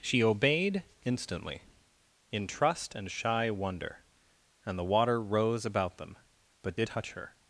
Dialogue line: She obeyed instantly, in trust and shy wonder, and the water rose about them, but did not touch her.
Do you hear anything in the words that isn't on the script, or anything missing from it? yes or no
yes